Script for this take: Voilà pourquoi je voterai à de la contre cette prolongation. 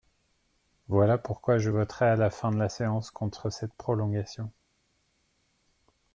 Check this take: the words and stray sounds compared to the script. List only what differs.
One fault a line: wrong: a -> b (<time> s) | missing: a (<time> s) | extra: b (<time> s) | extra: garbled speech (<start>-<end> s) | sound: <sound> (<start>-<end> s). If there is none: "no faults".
extra: la fin (2.1 s)
extra: séance (2.7 s)